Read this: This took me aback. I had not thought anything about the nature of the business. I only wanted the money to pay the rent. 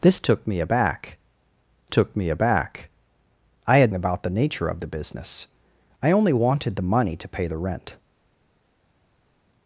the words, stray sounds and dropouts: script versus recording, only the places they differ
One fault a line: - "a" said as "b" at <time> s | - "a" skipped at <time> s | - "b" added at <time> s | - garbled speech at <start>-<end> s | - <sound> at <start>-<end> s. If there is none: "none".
- "I had not thought anything" said as "took me aback I had" at 1.9 s